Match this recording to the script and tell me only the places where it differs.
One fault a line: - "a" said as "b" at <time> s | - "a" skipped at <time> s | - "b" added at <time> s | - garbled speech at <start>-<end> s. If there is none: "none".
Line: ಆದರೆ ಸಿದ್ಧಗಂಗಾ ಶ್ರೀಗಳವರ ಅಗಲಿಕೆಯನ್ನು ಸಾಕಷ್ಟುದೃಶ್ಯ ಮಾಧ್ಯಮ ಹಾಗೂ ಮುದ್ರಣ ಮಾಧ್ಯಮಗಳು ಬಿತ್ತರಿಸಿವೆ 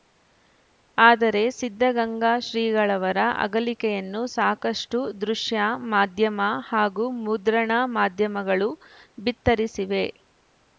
none